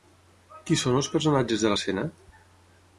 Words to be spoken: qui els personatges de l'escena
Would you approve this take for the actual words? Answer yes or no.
no